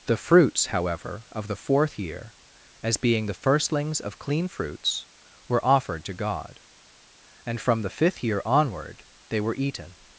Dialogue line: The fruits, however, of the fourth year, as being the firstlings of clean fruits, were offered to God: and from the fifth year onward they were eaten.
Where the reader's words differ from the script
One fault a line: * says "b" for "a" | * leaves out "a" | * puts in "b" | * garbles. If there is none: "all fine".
all fine